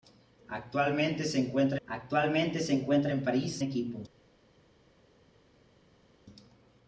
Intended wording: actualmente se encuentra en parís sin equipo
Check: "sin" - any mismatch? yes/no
yes